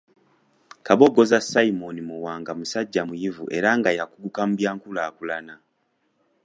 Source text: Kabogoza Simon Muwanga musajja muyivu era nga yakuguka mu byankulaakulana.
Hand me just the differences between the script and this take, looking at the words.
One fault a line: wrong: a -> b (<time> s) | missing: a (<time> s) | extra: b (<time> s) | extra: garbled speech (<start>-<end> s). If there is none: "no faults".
no faults